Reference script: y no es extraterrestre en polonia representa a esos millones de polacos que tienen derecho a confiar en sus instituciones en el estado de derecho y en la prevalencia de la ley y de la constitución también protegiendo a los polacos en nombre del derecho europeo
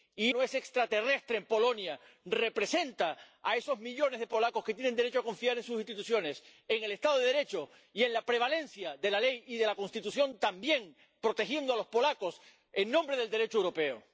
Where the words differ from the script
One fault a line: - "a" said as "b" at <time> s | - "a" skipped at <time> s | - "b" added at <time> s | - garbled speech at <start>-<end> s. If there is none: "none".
none